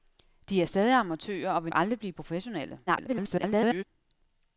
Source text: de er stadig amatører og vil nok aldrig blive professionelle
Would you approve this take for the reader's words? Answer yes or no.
no